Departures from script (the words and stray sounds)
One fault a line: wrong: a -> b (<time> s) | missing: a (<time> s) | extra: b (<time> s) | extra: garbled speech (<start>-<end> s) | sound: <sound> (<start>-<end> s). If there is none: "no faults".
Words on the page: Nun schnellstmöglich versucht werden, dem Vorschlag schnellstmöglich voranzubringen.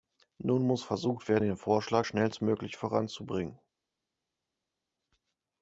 wrong: schnellstmöglich -> muss (0.7 s)
wrong: dem -> den (1.4 s)